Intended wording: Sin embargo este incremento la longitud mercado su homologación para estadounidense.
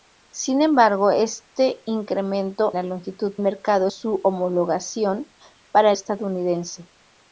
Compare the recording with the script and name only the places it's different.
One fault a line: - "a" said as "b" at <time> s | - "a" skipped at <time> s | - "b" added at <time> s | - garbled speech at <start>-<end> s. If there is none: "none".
none